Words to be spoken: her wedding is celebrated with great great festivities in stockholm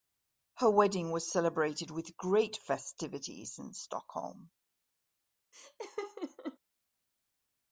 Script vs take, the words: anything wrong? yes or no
yes